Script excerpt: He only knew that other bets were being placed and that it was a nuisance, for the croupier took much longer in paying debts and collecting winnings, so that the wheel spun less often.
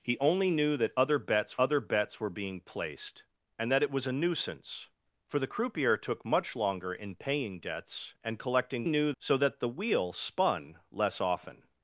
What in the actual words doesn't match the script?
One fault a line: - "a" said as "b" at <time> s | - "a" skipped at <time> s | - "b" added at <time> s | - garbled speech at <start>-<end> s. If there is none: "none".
- "other bets" added at 1.6 s
- "winnings" said as "knew" at 8.8 s